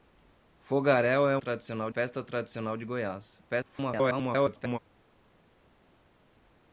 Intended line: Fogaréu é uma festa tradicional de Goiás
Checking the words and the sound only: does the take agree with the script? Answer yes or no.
no